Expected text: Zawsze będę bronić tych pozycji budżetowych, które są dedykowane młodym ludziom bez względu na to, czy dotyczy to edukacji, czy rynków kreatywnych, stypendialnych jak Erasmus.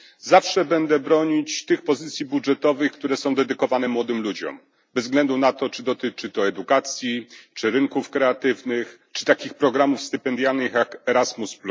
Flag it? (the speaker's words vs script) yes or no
yes